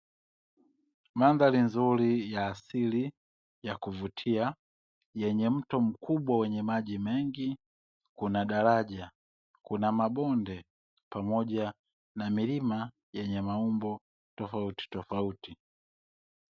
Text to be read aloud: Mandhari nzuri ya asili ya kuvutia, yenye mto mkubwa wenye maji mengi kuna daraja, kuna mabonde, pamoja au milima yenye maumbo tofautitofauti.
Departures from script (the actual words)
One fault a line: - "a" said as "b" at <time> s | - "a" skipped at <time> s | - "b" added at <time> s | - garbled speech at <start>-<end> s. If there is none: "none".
- "au" said as "na" at 12.1 s